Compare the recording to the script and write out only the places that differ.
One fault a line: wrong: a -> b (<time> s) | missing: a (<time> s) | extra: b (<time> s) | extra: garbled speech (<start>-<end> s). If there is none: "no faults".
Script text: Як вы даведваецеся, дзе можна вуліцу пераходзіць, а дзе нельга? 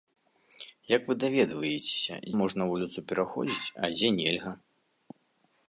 missing: дзе (2.1 s)